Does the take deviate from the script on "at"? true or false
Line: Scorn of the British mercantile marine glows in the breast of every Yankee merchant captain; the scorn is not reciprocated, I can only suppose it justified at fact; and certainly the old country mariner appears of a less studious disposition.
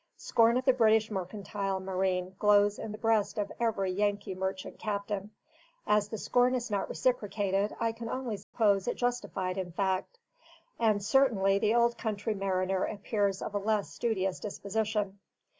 true